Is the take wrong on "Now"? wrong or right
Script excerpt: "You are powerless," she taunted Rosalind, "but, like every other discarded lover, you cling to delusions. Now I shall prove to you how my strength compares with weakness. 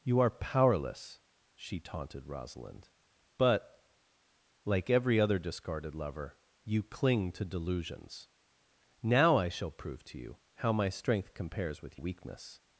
right